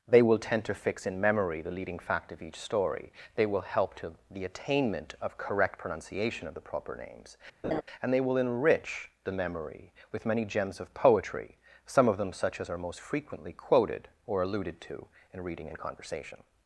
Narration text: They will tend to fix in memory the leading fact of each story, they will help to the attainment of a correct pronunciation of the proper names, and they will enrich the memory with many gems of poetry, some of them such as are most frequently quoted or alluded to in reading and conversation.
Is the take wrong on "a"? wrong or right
wrong